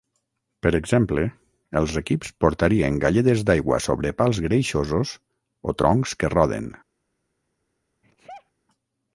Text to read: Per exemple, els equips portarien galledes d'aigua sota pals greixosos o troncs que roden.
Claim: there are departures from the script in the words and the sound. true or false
true